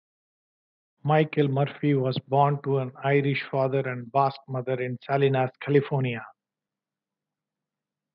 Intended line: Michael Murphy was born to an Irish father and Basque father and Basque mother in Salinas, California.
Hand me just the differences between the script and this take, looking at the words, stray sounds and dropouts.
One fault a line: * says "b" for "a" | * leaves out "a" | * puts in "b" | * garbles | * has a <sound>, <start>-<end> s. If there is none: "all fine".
* leaves out "father and Basque"